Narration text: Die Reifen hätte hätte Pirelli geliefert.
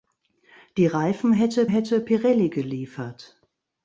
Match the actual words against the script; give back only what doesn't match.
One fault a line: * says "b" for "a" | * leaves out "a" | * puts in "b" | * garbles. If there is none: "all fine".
all fine